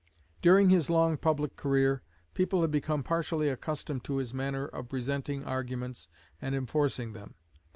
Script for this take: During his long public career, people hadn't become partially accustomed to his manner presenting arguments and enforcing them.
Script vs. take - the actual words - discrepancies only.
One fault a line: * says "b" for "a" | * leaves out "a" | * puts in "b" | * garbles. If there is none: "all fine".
* says "had" for "hadn't"
* puts in "of"